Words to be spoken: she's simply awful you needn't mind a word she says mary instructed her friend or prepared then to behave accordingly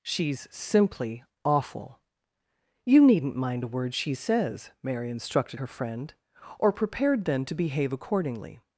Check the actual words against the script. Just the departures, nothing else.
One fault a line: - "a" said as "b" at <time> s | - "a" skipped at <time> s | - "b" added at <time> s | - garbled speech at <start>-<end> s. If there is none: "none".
none